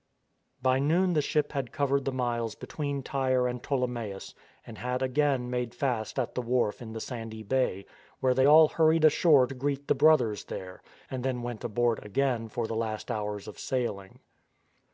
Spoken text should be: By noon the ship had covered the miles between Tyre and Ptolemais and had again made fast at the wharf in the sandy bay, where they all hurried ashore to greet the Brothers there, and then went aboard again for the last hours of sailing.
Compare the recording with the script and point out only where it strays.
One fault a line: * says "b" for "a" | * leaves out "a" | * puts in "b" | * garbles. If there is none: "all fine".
all fine